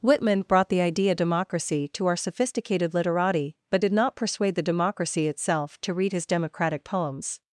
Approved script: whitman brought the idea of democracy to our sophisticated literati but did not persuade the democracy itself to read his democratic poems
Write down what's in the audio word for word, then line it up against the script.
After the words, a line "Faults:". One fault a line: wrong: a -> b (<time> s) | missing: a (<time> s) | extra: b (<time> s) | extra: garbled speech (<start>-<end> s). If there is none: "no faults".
whitman brought the idea democracy to our sophisticated literati but did not persuade the democracy itself to read his democratic poems
Faults:
missing: of (1.1 s)